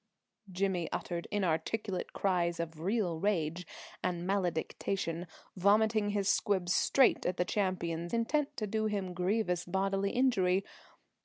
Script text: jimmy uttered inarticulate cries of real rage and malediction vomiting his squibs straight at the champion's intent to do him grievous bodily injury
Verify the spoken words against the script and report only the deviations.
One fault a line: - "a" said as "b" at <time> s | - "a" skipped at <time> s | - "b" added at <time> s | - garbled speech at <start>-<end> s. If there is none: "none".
none